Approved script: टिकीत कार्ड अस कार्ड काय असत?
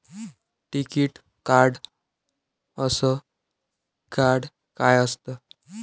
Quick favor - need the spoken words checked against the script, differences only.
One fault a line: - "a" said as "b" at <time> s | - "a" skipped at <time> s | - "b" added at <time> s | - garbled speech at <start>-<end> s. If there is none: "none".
none